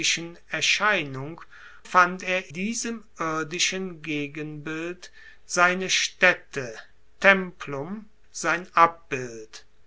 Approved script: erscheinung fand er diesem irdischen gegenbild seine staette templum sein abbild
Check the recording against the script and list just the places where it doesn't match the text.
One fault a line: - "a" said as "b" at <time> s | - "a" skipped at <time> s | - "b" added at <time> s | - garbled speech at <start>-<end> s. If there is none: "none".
none